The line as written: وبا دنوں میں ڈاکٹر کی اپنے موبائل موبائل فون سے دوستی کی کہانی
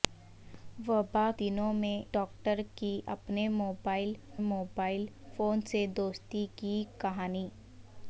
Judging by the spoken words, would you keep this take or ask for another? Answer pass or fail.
pass